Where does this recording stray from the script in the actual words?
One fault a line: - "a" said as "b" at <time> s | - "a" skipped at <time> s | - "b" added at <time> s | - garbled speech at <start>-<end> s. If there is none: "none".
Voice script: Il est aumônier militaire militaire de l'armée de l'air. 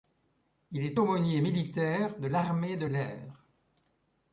- "militaire" skipped at 2.2 s